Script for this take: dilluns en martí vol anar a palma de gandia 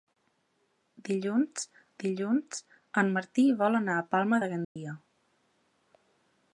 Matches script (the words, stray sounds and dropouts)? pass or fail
fail